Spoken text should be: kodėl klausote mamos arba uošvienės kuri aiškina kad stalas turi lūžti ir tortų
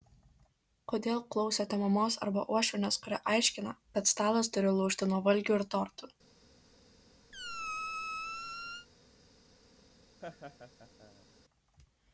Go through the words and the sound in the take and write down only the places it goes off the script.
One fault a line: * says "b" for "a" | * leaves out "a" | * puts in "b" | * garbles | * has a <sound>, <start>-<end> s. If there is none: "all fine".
* puts in "nuo valgių"
* has a squeak, 7.3-8.9 s
* has a laugh, 10.2-11.3 s